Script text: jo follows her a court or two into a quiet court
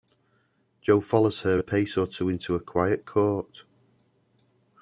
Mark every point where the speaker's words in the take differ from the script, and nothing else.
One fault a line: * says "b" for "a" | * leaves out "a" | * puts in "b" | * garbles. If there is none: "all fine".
* says "pace" for "court"